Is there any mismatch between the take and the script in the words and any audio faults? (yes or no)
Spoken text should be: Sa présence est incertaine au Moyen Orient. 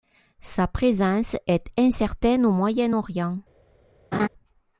yes